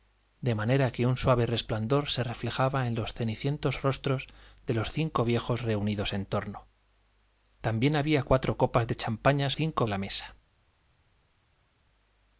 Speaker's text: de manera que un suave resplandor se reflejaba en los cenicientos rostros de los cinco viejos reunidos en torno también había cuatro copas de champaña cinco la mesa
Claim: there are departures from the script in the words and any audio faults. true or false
false